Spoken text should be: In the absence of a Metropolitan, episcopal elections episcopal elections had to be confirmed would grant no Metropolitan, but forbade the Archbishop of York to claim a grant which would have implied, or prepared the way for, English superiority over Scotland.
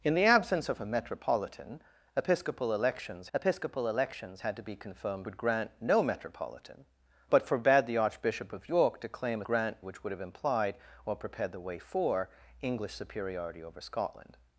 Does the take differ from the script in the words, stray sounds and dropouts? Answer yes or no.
no